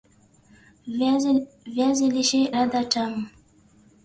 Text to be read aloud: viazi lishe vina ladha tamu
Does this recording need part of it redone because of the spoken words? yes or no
yes